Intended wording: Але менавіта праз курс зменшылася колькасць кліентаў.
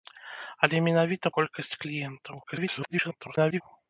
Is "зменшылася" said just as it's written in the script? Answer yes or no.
no